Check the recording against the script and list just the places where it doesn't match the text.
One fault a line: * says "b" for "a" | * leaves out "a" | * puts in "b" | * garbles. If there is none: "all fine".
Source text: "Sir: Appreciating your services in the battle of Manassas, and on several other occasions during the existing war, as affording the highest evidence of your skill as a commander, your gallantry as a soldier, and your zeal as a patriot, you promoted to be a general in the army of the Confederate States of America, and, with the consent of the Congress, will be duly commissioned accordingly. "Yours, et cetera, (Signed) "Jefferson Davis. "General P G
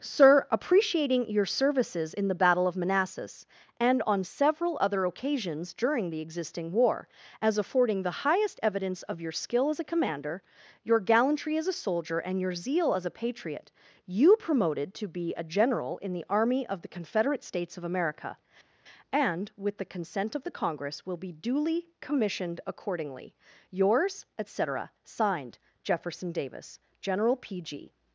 all fine